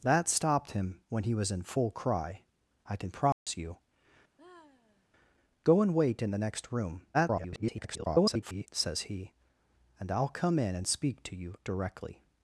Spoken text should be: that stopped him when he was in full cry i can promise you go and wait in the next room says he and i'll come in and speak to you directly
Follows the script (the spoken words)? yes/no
no